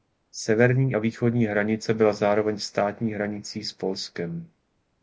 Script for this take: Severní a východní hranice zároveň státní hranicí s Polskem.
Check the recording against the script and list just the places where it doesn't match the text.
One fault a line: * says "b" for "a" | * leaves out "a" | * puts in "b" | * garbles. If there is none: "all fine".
* puts in "byla"